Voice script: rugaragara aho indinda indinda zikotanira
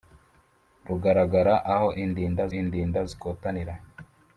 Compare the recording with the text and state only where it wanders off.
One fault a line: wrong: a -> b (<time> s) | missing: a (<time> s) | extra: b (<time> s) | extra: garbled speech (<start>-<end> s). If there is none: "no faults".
no faults